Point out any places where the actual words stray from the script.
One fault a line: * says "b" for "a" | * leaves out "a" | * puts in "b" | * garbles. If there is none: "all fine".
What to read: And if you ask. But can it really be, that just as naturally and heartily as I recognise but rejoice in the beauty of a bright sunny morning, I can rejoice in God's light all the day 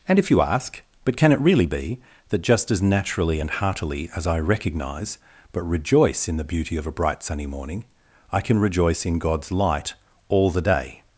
all fine